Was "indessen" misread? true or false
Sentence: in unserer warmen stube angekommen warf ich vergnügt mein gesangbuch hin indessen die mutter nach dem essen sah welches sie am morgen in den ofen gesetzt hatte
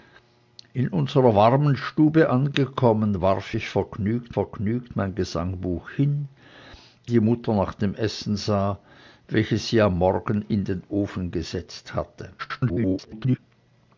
true